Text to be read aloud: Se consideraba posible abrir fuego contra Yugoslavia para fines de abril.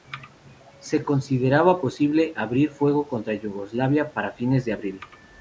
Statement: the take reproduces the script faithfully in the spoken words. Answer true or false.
true